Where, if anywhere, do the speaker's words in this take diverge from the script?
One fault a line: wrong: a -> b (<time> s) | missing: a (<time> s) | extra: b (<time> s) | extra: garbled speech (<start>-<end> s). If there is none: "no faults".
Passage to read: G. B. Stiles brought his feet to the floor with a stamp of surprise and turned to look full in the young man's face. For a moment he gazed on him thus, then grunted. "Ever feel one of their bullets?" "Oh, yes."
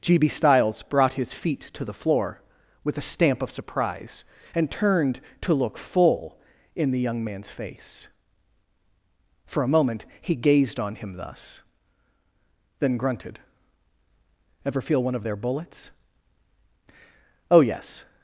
no faults